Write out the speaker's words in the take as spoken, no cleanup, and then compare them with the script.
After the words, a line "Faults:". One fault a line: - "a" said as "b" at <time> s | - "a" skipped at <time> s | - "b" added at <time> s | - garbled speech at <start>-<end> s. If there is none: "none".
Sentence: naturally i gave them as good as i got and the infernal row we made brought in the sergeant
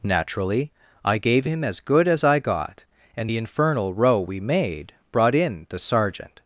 naturally i gave him as good as i got and the infernal row we made brought in the sergeant
Faults:
- "them" said as "him" at 1.4 s